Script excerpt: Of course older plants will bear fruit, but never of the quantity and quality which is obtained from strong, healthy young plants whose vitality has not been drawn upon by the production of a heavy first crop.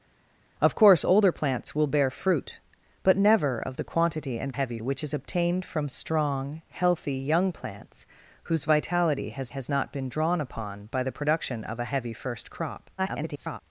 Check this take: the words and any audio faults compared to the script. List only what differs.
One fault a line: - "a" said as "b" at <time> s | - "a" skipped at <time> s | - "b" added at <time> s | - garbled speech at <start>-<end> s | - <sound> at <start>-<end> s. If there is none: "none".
- "quality" said as "heavy" at 4.5 s
- "has" added at 9.5 s
- garbled speech at 13.0-13.6 s